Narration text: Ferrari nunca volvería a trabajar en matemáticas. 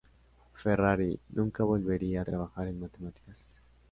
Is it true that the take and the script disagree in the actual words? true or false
false